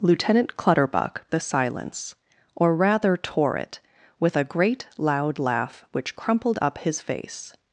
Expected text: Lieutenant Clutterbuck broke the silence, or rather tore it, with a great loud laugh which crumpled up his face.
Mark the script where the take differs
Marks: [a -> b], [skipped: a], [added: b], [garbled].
Lieutenant Clutterbuck [skipped: broke] the silence, or rather tore it, with a great loud laugh which crumpled up his face.